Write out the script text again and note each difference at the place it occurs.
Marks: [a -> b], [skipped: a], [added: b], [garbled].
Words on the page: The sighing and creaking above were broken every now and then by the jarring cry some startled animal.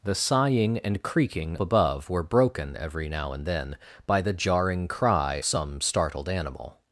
The sighing and creaking above were broken every now and then by the jarring cry some startled animal.